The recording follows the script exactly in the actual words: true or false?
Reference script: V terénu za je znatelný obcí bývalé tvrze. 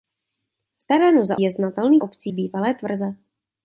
true